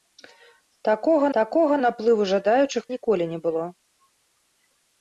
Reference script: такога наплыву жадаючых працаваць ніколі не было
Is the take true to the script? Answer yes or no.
no